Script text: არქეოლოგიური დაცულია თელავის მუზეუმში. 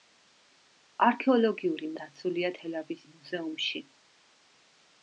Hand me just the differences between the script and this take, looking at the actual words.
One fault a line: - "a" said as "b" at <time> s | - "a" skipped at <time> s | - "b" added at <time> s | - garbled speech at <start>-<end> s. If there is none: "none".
none